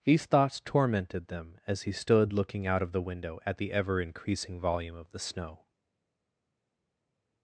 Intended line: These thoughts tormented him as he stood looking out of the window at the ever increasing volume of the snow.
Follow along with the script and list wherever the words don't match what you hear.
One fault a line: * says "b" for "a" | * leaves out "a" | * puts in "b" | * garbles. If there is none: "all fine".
* says "them" for "him"